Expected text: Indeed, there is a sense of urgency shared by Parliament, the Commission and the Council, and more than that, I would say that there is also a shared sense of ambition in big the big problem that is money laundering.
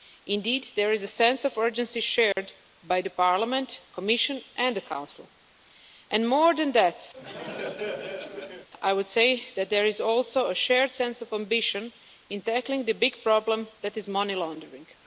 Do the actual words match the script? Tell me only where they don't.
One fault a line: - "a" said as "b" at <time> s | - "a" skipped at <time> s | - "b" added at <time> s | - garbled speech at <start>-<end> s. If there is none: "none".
- "big" said as "tackling" at 12.4 s